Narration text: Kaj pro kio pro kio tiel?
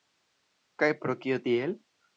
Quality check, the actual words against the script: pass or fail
fail